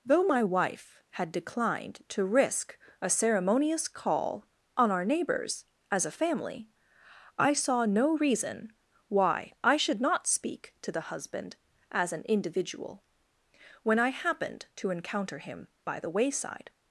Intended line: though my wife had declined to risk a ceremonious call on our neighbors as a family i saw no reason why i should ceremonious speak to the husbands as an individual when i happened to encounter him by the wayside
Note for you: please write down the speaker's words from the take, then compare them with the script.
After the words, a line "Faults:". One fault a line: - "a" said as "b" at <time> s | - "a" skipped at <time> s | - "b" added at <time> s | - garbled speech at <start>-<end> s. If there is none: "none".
though my wife had declined to risk a ceremonious call on our neighbors as a family i saw no reason why i should not speak to the husband as an individual when i happened to encounter him by the wayside
Faults:
- "ceremonious" said as "not" at 10.0 s
- "husbands" said as "husband" at 11.0 s